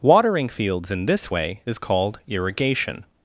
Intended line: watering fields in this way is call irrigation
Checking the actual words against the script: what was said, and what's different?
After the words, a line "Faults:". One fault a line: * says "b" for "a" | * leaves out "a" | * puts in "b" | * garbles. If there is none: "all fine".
watering fields in this way is called irrigation
Faults:
* says "called" for "call"